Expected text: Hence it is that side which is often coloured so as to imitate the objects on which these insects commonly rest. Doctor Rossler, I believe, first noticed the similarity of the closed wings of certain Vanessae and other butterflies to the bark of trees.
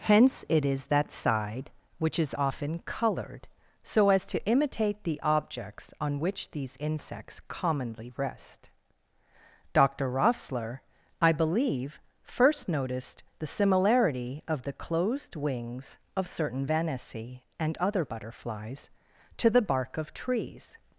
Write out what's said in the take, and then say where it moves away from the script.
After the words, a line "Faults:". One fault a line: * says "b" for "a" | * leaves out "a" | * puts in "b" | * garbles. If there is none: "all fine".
Hence it is that side which is often coloured so as to imitate the objects on which these insects commonly rest. Doctor Rossler, I believe, first noticed the similarity of the closed wings of certain Vanessae and other butterflies to the bark of trees.
Faults:
all fine